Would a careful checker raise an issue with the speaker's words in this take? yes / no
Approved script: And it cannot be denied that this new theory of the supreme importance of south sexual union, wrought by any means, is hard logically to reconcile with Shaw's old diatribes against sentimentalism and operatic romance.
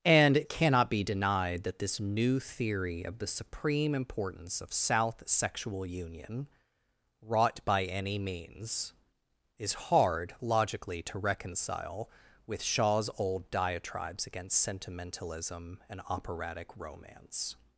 no